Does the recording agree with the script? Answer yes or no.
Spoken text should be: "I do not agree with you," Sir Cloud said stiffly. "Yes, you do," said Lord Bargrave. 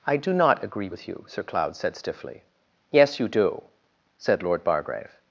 yes